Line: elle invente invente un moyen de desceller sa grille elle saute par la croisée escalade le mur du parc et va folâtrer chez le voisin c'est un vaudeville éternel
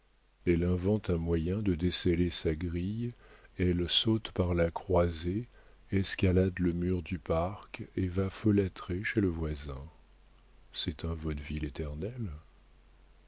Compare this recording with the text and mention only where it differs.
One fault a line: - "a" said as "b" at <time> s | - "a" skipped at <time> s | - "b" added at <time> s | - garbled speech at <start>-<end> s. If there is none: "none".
- "invente" skipped at 1.1 s